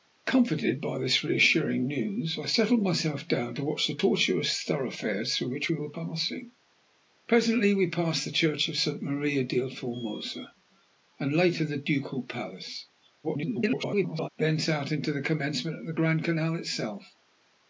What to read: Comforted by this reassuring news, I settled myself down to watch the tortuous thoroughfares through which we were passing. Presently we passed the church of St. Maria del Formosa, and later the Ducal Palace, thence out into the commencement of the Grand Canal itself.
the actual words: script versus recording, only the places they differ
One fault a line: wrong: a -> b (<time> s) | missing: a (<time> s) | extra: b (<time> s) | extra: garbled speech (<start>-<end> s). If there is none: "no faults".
extra: garbled speech (13.2-14.3 s)